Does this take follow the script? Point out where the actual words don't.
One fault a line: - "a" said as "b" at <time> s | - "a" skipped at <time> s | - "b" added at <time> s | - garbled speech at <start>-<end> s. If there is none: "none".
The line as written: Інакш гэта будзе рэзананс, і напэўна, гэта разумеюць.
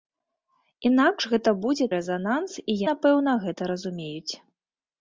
none